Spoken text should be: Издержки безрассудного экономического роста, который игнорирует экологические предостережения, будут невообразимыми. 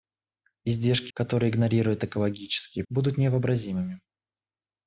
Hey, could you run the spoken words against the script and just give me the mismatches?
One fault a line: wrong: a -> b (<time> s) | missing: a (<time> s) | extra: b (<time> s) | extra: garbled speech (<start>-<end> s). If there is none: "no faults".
missing: безрассудного экономического роста (1.1 s)
missing: предостережения (2.8 s)